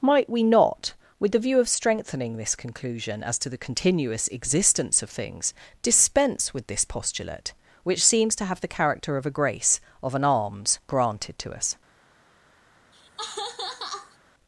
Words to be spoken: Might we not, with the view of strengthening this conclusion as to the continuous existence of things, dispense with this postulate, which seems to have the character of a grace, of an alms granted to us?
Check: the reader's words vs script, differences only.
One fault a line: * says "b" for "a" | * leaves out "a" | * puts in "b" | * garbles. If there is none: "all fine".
all fine